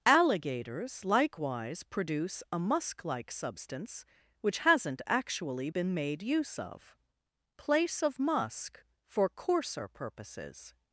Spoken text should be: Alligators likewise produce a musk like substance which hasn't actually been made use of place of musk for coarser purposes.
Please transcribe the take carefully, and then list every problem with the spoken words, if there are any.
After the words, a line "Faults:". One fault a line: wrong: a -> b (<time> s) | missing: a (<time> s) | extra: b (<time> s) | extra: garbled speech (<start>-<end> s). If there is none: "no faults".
Alligators likewise produce a musk like substance which hasn't actually been made use of place of musk for coarser purposes.
Faults:
no faults